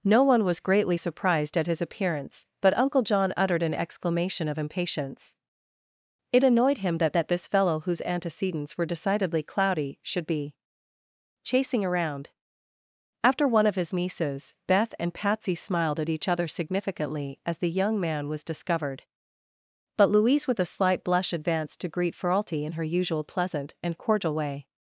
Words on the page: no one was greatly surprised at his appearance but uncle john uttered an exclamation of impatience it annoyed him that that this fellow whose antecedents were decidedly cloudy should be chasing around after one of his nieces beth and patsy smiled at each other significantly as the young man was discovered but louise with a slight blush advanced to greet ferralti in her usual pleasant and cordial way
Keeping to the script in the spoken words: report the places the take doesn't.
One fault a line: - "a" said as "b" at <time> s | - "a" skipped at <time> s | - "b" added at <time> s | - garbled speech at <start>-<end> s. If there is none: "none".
none